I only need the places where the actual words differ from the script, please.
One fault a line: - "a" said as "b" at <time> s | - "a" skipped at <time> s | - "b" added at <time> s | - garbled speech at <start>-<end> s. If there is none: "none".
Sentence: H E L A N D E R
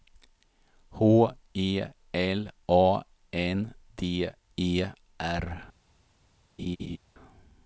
none